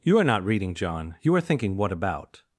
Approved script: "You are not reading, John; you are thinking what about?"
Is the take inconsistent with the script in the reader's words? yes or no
no